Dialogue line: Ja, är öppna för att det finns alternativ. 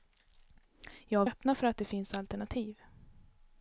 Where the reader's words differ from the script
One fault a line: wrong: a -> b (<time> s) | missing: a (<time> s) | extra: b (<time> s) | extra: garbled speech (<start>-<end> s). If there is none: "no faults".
no faults